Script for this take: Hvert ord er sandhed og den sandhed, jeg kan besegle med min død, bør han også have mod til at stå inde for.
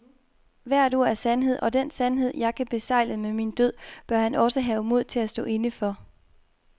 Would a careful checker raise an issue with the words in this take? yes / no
no